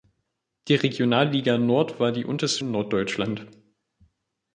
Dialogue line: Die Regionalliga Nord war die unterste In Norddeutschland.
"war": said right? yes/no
yes